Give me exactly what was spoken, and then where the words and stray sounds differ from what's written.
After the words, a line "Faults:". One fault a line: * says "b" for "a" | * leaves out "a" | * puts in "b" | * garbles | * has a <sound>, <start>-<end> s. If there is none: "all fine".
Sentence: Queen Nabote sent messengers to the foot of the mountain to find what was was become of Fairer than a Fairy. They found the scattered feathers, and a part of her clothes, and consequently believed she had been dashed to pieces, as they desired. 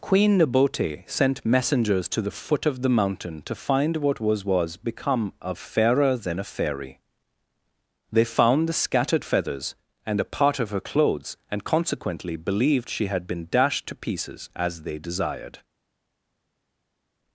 Queen Nabote sent messengers to the foot of the mountain to find what was was become of Fairer than a Fairy. They found the scattered feathers, and a part of her clothes, and consequently believed she had been dashed to pieces, as they desired.
Faults:
all fine